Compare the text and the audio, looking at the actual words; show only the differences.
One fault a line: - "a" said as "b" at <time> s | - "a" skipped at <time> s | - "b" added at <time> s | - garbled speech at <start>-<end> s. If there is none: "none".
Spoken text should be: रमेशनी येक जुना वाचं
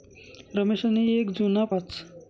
none